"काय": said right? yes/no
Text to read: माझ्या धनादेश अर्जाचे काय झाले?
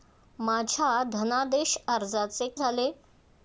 no